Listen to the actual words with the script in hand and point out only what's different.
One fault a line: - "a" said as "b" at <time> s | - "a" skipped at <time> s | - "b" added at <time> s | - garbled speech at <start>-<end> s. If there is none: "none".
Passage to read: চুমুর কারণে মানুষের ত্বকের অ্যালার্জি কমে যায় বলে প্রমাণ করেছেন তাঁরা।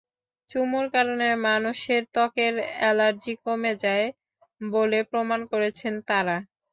none